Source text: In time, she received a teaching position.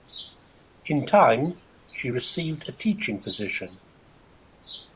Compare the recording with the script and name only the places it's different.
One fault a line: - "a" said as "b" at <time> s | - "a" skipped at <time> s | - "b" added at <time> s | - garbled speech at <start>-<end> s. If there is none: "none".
none